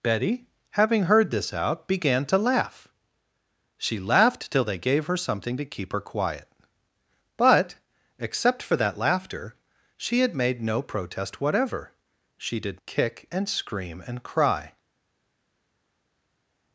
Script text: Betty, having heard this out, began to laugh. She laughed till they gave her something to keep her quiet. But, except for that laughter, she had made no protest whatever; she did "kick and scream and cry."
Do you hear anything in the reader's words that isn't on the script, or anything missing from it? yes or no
no